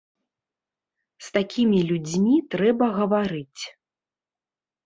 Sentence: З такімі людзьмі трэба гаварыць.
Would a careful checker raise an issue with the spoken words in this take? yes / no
no